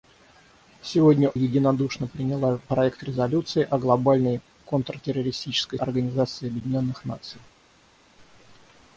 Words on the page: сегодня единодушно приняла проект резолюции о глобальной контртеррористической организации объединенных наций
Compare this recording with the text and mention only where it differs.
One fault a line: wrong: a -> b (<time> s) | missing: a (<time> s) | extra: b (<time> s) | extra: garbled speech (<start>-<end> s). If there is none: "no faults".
no faults